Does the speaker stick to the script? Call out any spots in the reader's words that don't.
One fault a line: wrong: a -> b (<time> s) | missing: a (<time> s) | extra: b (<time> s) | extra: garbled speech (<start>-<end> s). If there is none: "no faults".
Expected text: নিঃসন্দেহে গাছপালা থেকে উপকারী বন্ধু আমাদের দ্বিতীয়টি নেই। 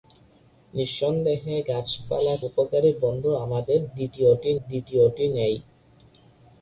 missing: থেকে (2.4 s)
extra: দ্বিতীয়টি (4.6 s)